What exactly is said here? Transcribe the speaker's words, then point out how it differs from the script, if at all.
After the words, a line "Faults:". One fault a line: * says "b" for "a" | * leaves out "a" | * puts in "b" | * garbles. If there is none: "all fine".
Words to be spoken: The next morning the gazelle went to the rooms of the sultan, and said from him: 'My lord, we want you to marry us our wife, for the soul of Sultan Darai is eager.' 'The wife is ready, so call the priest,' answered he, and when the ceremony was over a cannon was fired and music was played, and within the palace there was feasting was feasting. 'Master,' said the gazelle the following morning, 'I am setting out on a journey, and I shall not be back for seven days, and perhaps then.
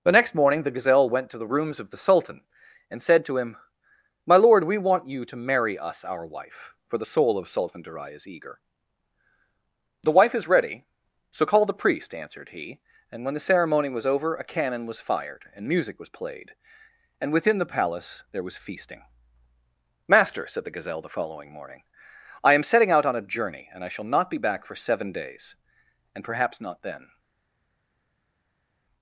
The next morning the gazelle went to the rooms of the sultan, and said to him: 'My lord, we want you to marry us our wife, for the soul of Sultan Darai is eager.' 'The wife is ready, so call the priest,' answered he, and when the ceremony was over a cannon was fired and music was played, and within the palace there was feasting. 'Master,' said the gazelle the following morning, 'I am setting out on a journey, and I shall not be back for seven days, and perhaps not then.
Faults:
* says "to" for "from"
* leaves out "was feasting"
* puts in "not"